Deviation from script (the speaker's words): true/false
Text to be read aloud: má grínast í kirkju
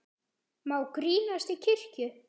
false